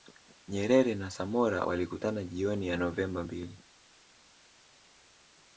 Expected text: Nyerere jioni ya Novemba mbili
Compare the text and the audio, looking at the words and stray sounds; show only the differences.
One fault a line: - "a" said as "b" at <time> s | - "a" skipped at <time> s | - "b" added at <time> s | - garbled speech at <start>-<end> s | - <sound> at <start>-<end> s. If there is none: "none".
- "na Samora walikutana" added at 0.9 s